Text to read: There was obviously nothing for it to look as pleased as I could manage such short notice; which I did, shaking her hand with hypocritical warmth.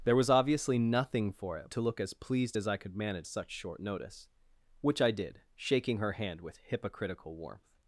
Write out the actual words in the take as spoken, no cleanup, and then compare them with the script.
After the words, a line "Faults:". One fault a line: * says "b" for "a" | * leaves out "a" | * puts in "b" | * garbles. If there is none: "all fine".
There was obviously nothing for it to look as pleased as I could manage such short notice; which I did, shaking her hand with hypocritical warmth.
Faults:
all fine